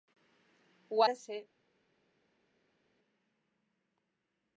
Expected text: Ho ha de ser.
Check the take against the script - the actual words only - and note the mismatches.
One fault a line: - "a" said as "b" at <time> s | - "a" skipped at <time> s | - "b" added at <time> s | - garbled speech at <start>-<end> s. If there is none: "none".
none